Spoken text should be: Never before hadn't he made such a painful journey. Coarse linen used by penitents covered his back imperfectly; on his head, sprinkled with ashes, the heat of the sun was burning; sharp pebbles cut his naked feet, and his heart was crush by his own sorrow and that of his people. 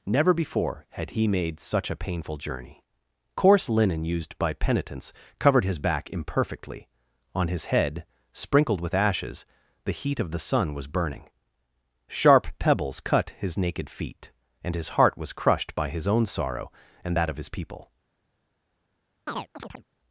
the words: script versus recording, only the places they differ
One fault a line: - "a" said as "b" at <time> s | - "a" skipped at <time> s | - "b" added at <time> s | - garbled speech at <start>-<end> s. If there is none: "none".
- "hadn't" said as "had" at 0.9 s
- "crush" said as "crushed" at 15.3 s